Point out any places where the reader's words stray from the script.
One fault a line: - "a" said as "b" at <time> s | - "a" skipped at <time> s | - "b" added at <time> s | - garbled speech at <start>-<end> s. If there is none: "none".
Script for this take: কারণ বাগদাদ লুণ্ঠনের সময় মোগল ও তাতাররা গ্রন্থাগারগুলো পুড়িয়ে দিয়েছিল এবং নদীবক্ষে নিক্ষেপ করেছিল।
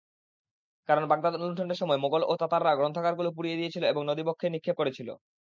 none